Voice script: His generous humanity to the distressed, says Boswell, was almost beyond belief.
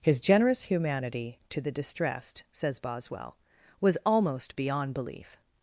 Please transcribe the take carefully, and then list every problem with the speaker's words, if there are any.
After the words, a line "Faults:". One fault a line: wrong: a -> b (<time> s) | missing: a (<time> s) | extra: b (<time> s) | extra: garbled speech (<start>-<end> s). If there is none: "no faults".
His generous humanity to the distressed, says Boswell, was almost beyond belief.
Faults:
no faults